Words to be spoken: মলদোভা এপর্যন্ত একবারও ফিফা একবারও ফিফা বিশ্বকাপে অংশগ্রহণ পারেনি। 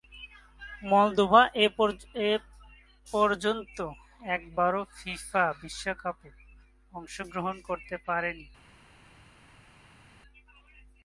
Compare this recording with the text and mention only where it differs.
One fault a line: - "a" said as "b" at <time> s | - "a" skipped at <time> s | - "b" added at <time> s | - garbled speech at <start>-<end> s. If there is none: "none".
- "একবারও ফিফা" skipped at 5.5 s
- "করতে" added at 7.7 s